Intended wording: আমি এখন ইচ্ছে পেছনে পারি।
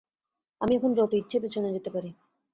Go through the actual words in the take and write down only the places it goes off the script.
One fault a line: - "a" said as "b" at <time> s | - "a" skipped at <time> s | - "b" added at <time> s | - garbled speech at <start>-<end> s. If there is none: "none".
- "যত" added at 0.9 s
- "যেতে" added at 1.7 s